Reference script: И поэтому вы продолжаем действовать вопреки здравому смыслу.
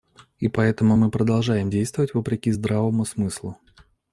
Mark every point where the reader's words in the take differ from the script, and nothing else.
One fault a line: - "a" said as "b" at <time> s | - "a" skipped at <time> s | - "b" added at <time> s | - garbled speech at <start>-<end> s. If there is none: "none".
- "вы" said as "мы" at 1.0 s